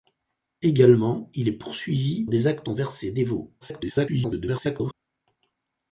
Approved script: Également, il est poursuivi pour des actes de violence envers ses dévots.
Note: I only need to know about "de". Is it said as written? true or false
false